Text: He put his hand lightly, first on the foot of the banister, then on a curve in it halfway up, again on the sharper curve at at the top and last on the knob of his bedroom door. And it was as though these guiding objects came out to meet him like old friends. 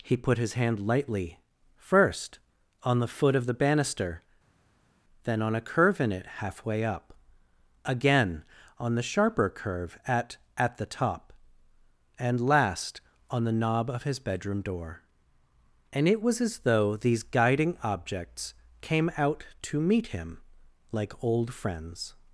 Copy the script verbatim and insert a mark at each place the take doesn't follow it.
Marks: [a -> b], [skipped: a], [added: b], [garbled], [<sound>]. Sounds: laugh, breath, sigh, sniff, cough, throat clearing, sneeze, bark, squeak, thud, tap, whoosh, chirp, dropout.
He put his hand lightly, first on the foot of the banister, then on a curve in it halfway up, again on the sharper curve at at the top and last on the knob of his bedroom door. And it was as though these guiding objects came out to meet him like old friends.